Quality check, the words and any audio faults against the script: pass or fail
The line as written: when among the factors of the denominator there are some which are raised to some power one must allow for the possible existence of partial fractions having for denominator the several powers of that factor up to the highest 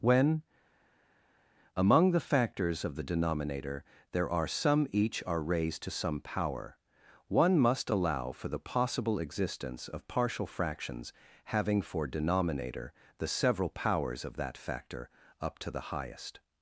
fail